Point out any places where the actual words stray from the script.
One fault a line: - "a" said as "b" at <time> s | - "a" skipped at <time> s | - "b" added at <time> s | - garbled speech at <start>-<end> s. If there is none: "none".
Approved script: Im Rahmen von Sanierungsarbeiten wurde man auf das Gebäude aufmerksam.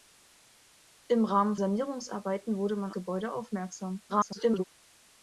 - "von" skipped at 1.6 s
- "auf das" skipped at 2.9 s
- garbled speech at 4.1-4.6 s